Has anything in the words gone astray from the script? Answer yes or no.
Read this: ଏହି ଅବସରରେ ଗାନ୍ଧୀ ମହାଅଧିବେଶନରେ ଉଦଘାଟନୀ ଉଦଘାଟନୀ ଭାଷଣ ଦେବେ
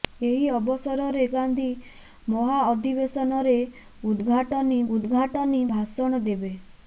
no